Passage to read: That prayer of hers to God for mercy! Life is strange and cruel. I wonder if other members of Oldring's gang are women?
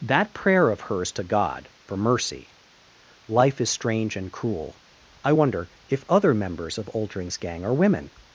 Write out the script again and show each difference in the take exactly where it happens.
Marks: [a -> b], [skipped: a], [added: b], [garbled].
That prayer of hers to God for mercy! Life is strange and cruel. I wonder if other members of Oldring's gang are women?